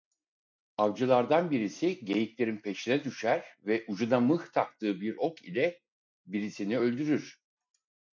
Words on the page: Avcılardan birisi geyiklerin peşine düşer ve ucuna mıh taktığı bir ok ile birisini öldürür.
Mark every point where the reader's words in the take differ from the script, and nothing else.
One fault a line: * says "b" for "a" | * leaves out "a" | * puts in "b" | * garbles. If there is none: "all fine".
all fine